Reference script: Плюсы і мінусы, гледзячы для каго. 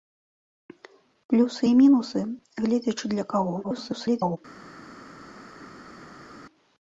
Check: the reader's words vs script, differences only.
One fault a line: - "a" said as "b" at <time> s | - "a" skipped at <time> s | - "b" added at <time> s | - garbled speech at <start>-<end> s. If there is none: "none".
- garbled speech at 3.6-4.4 s